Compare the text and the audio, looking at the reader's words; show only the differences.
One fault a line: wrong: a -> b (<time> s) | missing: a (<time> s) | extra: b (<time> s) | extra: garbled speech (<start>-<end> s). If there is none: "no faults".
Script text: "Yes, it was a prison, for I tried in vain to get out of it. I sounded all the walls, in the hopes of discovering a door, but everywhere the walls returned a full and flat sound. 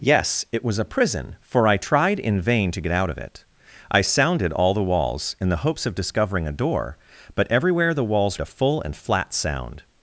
missing: returned (8.4 s)